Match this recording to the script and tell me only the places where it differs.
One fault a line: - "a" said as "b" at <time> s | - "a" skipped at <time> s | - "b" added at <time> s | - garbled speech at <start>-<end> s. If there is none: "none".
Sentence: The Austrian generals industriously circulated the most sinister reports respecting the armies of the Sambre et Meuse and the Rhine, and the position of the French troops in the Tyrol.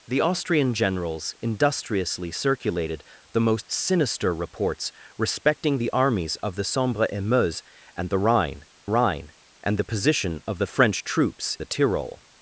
- "Rhine" added at 8.9 s
- "in" skipped at 11.6 s